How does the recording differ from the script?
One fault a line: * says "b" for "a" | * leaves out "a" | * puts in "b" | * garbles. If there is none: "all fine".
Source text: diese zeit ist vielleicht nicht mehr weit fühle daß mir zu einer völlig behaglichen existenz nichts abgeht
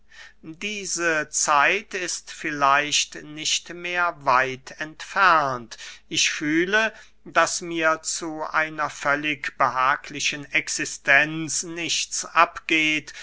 * puts in "entfernt ich"